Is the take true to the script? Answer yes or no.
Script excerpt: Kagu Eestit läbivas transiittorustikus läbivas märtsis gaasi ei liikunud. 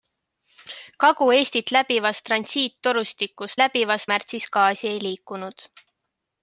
yes